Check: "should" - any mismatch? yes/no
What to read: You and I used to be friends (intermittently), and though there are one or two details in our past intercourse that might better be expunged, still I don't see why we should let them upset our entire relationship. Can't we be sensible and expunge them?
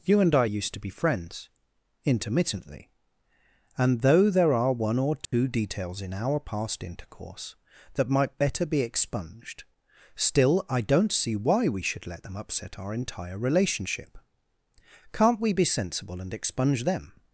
no